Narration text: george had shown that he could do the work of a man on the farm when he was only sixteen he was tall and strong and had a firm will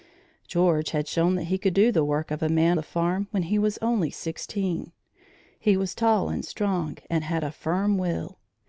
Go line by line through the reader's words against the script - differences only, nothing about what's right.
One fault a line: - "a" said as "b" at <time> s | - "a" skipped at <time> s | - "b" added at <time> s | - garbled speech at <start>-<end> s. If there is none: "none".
- "on" skipped at 2.8 s